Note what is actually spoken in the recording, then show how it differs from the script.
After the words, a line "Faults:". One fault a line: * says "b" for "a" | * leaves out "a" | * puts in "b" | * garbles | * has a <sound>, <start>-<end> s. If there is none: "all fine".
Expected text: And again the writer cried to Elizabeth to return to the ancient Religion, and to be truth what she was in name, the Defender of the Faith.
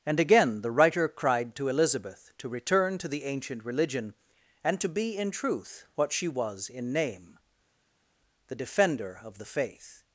And again the writer cried to Elizabeth to return to the ancient Religion, and to be in truth what she was in name, the Defender of the Faith.
Faults:
* puts in "in"